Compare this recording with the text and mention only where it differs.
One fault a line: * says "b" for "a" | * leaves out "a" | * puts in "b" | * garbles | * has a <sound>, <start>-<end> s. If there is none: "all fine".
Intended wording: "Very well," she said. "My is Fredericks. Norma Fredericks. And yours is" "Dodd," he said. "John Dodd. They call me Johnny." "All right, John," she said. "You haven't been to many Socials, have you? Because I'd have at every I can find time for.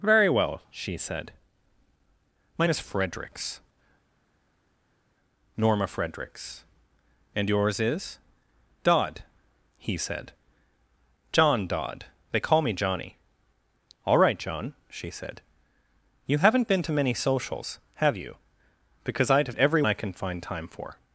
all fine